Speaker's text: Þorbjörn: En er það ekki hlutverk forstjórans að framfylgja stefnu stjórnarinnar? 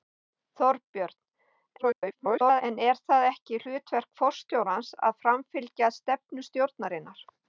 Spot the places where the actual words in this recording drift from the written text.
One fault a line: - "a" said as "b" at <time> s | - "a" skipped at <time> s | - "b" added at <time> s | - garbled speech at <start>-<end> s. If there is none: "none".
- garbled speech at 1.8-2.6 s